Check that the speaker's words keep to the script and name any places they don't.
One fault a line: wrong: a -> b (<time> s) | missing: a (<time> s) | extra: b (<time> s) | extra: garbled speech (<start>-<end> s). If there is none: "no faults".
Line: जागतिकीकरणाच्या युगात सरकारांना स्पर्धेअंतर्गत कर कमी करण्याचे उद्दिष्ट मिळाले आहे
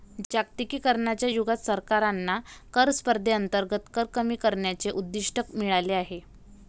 extra: कर (2.7 s)